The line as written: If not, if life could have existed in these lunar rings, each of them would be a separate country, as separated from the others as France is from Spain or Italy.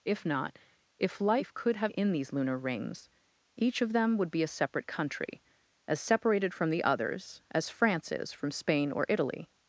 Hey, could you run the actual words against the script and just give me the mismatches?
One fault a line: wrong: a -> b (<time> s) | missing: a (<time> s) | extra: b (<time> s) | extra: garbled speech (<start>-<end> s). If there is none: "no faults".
missing: existed (1.9 s)